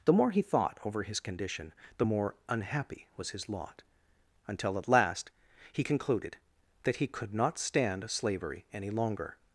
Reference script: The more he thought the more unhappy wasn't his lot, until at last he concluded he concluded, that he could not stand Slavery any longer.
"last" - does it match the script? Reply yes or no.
yes